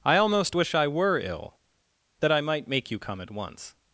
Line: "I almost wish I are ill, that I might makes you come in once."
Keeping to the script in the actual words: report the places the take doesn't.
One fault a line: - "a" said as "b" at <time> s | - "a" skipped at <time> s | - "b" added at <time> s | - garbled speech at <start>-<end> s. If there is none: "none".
- "are" said as "were" at 0.9 s
- "makes" said as "make" at 2.7 s
- "in" said as "at" at 3.2 s